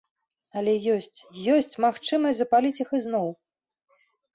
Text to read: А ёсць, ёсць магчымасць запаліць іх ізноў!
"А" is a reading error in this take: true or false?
true